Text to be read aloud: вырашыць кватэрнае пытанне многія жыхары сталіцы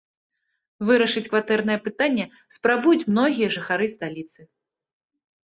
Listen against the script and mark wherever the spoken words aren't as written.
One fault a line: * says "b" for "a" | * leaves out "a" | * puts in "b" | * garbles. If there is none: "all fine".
* puts in "спрабуюць"